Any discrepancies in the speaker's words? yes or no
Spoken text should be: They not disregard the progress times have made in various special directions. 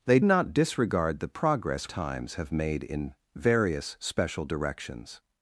no